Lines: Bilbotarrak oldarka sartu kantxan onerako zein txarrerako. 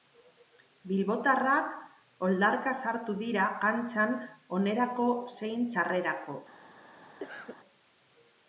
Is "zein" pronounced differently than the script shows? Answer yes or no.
no